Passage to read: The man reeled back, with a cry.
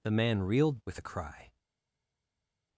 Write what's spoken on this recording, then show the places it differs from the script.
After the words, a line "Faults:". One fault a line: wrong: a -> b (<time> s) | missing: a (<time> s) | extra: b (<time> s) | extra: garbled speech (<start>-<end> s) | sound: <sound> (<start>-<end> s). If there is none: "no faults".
The man reeled with a cry.
Faults:
missing: back (0.8 s)